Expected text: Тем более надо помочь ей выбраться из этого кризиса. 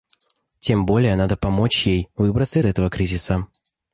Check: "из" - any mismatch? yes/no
yes